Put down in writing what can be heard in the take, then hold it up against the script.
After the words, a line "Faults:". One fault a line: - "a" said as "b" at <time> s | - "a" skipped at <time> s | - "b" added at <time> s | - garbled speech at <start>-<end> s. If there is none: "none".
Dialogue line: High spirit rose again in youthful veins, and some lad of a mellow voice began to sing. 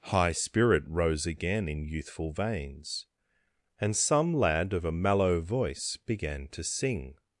High spirit rose again in youthful veins, and some lad of a mellow voice began to sing.
Faults:
none